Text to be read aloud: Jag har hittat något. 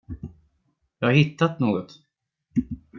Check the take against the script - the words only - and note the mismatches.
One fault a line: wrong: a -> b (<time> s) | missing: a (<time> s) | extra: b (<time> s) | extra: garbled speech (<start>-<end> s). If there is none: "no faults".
no faults